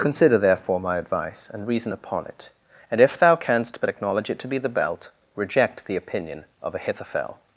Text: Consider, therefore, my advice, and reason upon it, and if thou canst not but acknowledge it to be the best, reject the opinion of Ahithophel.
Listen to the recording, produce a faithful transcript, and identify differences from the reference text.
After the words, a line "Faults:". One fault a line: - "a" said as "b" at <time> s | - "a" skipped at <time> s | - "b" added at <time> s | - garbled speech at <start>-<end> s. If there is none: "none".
Consider, therefore, my advice, and reason upon it, and if thou canst but acknowledge it to be the belt, reject the opinion of Ahithophel.
Faults:
- "not" skipped at 3.8 s
- "best" said as "belt" at 4.7 s